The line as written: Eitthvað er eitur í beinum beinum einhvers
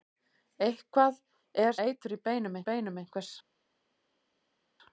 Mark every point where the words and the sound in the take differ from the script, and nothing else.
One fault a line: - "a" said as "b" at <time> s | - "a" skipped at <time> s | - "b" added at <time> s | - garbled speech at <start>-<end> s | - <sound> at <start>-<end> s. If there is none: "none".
none